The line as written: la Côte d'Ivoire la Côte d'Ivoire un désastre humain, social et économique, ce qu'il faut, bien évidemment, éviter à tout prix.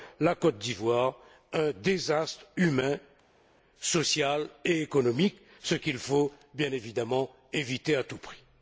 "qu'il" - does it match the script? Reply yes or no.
yes